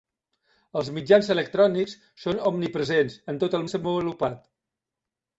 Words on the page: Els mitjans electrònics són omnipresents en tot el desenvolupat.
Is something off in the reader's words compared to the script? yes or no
no